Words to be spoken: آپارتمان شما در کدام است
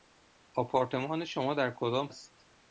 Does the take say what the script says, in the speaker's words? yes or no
yes